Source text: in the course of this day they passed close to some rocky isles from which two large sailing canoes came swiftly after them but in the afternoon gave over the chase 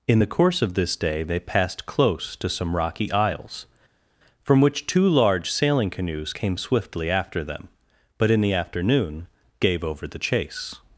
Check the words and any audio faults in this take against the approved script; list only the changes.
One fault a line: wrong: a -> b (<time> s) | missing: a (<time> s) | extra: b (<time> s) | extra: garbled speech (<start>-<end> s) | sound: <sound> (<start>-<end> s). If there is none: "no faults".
no faults